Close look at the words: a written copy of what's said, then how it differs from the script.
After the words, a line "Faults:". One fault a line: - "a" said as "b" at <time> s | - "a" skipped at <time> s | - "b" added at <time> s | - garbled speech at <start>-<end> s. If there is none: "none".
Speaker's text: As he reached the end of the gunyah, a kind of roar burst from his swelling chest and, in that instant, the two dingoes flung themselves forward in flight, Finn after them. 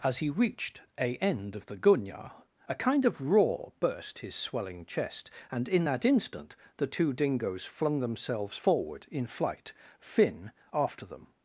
As he reached a end of the gunyah, a kind of roar burst his swelling chest and, in that instant, the two dingoes flung themselves forward in flight, Finn after them.
Faults:
- "the" said as "a" at 1.0 s
- "from" skipped at 4.2 s